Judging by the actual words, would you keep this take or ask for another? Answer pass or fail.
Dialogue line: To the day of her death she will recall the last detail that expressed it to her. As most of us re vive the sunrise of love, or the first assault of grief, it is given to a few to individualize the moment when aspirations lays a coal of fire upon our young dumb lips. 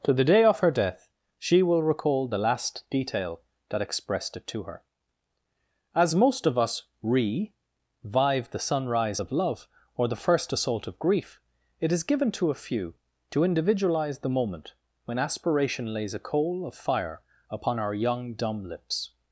fail